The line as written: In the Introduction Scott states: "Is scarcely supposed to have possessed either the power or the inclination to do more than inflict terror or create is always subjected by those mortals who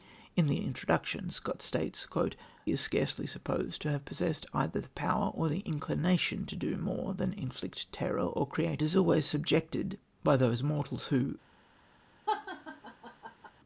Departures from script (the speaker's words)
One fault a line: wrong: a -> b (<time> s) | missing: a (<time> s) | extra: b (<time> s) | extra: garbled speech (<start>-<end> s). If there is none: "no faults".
no faults